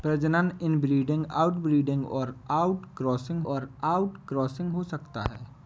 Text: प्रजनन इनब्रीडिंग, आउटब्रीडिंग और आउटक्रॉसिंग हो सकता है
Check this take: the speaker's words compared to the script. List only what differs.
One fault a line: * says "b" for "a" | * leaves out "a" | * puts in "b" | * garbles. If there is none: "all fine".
* puts in "और आउटक्रॉसिंग"